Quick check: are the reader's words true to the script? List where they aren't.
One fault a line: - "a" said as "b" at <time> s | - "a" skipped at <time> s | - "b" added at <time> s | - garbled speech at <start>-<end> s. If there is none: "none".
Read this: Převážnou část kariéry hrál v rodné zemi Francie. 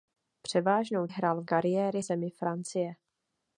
- "část kariéry" skipped at 1.1 s
- "rodné" said as "kariéry" at 1.4 s